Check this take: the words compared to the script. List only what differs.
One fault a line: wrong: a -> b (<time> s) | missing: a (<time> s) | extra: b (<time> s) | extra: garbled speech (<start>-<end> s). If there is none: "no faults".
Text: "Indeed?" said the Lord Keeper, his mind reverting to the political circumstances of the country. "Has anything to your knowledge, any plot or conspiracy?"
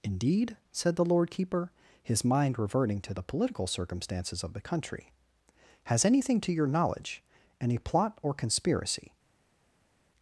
no faults